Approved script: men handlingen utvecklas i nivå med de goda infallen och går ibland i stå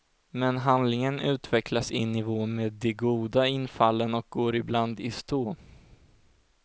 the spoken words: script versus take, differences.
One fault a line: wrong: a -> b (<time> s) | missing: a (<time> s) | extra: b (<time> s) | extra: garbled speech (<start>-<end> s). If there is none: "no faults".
no faults